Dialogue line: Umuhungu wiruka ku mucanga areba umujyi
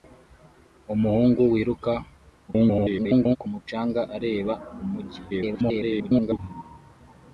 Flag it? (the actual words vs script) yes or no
yes